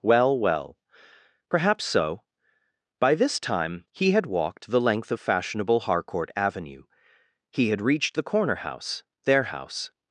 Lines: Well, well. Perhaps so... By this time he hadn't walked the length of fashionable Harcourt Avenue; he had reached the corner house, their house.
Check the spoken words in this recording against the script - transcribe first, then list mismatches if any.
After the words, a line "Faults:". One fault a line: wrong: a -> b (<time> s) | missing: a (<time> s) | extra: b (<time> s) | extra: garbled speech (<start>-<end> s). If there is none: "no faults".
Well, well. Perhaps so... By this time he had walked the length of fashionable Harcourt Avenue; he had reached the corner house, their house.
Faults:
wrong: hadn't -> had (4.1 s)